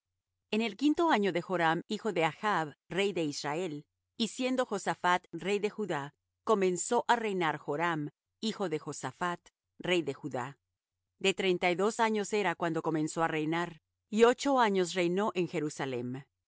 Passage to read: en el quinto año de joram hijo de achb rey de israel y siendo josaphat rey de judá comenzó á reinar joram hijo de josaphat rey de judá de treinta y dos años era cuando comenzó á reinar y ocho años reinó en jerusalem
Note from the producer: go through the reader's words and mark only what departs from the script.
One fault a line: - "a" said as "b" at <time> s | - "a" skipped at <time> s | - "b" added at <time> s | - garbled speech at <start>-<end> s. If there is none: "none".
none